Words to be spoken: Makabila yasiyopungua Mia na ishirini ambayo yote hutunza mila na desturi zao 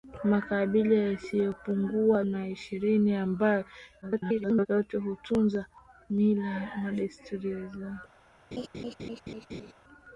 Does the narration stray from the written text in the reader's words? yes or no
yes